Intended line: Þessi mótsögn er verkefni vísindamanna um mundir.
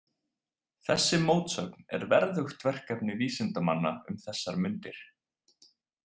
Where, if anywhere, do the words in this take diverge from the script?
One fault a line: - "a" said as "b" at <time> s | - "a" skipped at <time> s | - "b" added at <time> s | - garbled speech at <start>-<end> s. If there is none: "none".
- "verðugt" added at 2.1 s
- "þessar" added at 4.3 s